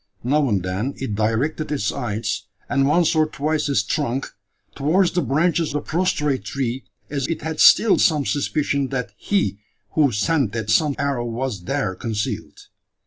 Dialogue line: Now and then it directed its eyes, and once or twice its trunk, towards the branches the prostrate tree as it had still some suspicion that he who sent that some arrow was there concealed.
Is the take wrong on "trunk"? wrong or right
right